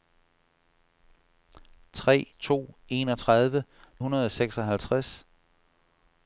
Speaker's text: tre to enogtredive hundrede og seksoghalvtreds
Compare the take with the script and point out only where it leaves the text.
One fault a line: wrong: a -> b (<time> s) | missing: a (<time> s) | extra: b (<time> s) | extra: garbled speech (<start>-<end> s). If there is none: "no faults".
no faults